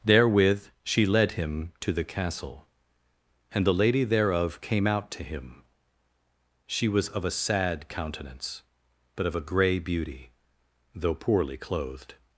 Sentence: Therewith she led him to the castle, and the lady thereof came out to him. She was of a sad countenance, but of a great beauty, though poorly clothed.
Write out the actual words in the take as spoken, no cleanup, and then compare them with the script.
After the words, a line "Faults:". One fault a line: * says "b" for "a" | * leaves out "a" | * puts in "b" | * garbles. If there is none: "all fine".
Therewith she led him to the castle, and the lady thereof came out to him. She was of a sad countenance, but of a grey beauty, though poorly clothed.
Faults:
* says "grey" for "great"